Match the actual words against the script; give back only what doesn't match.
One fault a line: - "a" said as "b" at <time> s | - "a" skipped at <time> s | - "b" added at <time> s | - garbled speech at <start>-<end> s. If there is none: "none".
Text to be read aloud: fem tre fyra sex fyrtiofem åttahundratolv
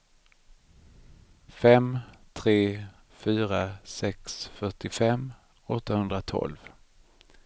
none